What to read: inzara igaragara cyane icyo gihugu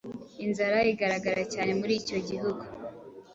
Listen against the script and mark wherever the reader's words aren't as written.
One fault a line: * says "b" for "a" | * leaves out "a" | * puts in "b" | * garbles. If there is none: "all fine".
* puts in "muri"